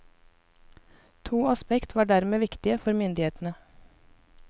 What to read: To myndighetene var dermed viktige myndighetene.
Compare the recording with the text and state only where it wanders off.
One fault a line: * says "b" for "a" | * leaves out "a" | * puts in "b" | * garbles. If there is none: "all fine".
* says "aspekt" for "myndighetene"
* puts in "for"